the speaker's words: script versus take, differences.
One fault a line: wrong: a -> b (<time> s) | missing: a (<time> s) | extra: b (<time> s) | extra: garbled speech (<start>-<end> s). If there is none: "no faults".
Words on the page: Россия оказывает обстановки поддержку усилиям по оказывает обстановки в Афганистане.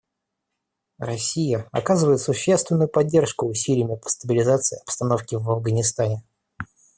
wrong: обстановки -> существенную (2.2 s)
wrong: оказывает -> стабилизации (4.1 s)